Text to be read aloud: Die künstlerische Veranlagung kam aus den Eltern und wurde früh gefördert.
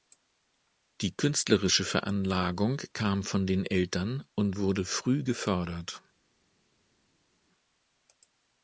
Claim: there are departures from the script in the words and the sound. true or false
true